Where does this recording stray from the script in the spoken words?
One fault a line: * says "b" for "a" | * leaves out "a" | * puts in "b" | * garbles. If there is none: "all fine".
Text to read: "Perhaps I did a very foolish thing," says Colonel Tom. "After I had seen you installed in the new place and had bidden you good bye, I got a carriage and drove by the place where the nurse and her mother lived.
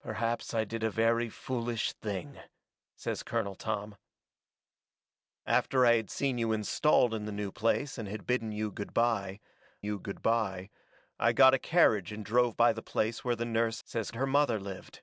* puts in "you good bye"
* says "says" for "and"